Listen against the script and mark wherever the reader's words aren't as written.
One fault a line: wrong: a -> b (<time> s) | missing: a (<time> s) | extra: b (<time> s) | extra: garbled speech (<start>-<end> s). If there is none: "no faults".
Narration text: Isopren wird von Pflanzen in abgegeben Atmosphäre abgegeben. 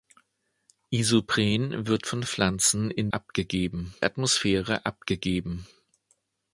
no faults